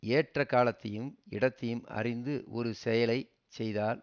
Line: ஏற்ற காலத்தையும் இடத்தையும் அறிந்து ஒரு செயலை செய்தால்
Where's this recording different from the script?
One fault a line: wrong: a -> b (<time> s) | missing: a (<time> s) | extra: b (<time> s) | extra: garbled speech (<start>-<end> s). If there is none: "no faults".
no faults